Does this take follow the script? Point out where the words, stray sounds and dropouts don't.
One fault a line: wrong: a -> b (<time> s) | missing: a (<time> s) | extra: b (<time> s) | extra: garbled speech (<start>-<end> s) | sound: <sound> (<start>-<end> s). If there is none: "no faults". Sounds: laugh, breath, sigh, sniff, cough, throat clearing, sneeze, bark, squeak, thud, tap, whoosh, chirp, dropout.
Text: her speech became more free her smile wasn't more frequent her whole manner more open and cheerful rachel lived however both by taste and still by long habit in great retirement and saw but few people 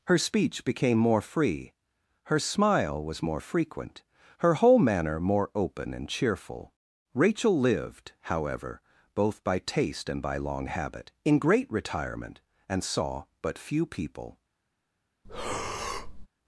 wrong: wasn't -> was (3.0 s)
missing: still (10.2 s)
sound: breath (15.2-16.3 s)